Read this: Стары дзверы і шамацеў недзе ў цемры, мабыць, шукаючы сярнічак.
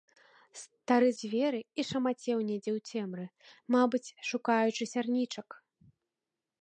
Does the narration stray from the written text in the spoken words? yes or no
no